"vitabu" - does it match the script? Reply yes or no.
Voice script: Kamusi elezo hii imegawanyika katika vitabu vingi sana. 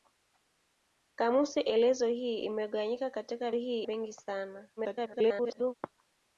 no